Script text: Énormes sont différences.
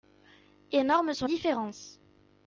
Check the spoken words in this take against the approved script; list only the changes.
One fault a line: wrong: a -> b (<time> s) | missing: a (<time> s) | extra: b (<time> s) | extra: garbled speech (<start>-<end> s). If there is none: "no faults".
no faults